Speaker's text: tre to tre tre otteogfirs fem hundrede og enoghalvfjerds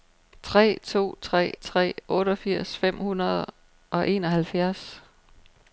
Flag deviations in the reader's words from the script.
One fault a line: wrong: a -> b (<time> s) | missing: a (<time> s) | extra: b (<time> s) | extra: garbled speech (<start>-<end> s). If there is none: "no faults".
no faults